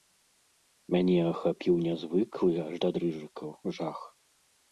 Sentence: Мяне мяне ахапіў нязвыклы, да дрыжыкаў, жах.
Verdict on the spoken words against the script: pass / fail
fail